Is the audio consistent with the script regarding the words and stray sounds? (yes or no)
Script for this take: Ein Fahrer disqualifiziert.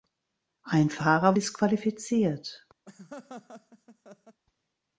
no